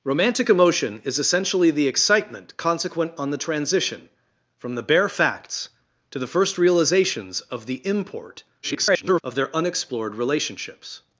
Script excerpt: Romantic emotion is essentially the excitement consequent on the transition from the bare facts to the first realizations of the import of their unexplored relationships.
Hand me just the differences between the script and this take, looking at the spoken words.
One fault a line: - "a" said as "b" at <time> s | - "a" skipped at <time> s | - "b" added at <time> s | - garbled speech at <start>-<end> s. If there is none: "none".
- garbled speech at 8.6-9.2 s